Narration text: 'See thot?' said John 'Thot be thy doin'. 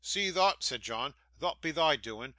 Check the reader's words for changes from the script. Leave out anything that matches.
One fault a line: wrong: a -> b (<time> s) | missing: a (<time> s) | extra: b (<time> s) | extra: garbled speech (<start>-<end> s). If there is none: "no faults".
no faults